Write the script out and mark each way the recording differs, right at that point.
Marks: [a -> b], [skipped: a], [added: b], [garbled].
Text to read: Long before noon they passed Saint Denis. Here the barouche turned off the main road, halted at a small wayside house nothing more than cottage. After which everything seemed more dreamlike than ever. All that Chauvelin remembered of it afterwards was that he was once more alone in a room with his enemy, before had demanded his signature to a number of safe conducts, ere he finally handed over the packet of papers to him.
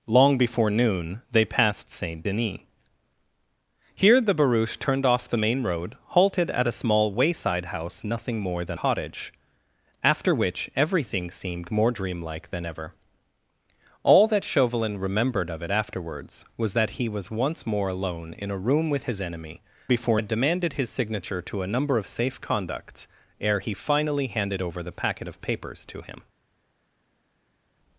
Long before noon they passed Saint Denis. Here the barouche turned off the main road, halted at a small wayside house nothing more than cottage. After which everything seemed more dreamlike than ever. All that Chauvelin remembered of it afterwards was that he was once more alone in a room with his enemy, before had demanded his signature to a number of safe conducts, ere he finally handed over the packet of papers to him.